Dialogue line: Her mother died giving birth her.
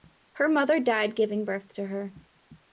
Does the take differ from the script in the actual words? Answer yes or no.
yes